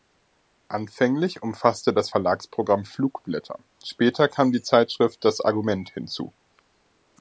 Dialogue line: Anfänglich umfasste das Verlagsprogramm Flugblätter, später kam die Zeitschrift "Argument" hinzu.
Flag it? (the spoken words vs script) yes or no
yes